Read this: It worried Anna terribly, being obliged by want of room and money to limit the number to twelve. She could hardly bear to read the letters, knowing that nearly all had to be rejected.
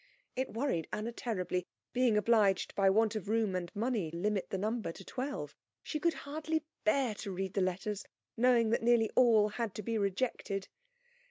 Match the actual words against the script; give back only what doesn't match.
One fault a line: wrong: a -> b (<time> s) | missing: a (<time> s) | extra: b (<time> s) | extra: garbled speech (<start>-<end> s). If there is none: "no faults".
missing: to (4.1 s)